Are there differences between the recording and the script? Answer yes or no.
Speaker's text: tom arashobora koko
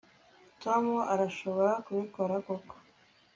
yes